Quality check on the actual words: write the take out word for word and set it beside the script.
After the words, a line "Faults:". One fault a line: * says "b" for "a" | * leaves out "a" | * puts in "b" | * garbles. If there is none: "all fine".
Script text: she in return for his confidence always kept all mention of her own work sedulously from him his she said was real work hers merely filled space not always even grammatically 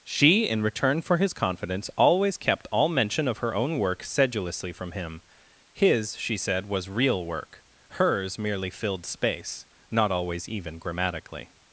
she in return for his confidence always kept all mention of her own work sedulously from him his she said was real work hers merely filled space not always even grammatically
Faults:
all fine